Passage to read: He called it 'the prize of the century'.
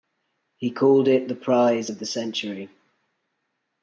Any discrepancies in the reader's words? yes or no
no